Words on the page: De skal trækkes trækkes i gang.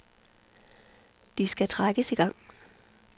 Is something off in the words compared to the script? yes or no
yes